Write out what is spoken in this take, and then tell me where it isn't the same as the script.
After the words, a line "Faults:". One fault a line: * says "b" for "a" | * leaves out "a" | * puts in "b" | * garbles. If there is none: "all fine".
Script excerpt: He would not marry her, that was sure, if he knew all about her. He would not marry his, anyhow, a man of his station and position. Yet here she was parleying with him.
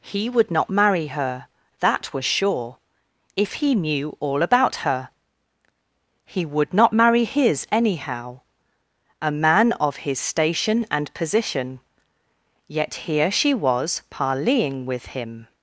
He would not marry her, that was sure, if he knew all about her. He would not marry his, anyhow, a man of his station and position. Yet here she was parleying with him.
Faults:
all fine